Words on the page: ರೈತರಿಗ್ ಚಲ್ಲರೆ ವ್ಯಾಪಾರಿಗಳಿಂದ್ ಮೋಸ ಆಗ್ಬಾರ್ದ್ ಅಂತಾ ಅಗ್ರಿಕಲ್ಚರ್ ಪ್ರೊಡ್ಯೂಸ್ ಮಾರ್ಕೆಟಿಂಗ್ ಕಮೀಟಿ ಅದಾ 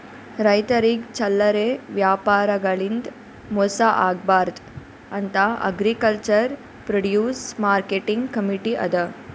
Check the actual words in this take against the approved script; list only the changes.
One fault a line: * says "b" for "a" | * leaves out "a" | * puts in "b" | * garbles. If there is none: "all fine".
all fine